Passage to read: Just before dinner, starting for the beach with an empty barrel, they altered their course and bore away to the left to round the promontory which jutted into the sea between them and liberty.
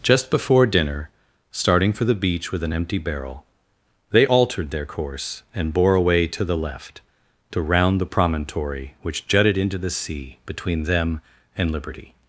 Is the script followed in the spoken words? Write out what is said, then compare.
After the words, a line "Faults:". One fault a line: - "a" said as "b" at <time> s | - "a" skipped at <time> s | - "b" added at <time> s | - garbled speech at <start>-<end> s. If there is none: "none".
Just before dinner, starting for the beach with an empty barrel, they altered their course and bore away to the left to round the promontory which jutted into the sea between them and liberty.
Faults:
none